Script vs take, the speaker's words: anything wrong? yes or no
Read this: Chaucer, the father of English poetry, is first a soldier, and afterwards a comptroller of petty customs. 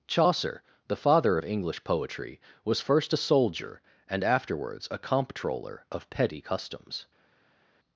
yes